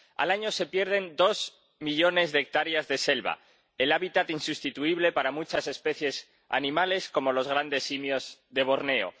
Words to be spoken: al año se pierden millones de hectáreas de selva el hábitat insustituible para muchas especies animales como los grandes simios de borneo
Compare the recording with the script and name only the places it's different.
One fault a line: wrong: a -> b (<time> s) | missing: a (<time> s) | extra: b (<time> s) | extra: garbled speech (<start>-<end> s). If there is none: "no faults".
extra: dos (1.1 s)